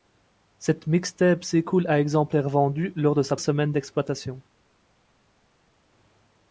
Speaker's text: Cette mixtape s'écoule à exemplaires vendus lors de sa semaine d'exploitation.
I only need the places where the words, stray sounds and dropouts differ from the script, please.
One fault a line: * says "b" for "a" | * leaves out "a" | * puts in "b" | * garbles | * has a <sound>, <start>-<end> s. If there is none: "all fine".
all fine